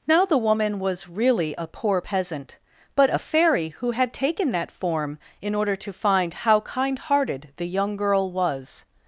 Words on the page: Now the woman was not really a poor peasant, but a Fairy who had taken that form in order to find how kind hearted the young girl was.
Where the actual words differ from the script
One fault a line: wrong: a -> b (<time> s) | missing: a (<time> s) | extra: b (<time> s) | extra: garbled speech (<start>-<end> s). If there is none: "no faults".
missing: not (1.1 s)